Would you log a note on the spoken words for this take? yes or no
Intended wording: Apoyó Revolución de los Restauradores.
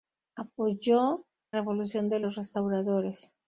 no